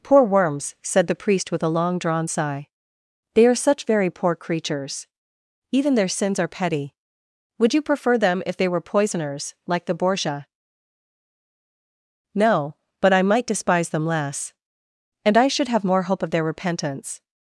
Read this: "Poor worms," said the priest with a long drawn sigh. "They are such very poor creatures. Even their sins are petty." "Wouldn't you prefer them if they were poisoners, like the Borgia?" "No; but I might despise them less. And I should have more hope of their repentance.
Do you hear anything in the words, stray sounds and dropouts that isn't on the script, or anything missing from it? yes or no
yes